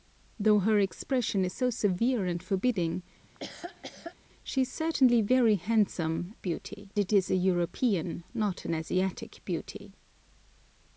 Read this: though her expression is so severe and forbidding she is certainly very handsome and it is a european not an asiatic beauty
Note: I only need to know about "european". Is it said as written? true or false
true